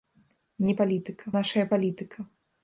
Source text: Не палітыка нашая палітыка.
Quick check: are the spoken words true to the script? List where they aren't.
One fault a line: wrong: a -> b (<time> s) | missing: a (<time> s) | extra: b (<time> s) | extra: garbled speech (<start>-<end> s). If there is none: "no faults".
no faults